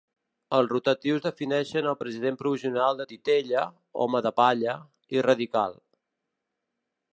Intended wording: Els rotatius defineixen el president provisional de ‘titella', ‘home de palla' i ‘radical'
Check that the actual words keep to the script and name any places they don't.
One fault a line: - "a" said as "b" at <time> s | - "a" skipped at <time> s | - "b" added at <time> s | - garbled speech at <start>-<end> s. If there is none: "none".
none